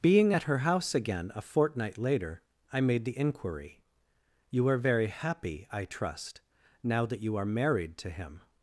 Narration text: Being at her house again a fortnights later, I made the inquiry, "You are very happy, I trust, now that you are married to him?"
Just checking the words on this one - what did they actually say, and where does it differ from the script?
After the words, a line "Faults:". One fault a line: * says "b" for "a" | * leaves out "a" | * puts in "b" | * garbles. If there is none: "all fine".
Being at her house again a fortnight later, I made the inquiry, "You are very happy, I trust, now that you are married to him?"
Faults:
* says "fortnight" for "fortnights"